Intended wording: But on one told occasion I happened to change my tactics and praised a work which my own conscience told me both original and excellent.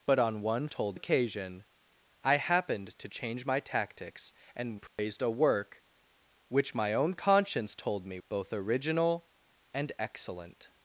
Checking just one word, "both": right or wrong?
right